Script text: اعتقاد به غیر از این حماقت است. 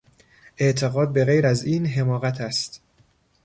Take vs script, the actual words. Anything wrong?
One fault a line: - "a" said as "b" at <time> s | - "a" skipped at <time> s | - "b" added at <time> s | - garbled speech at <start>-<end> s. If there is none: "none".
none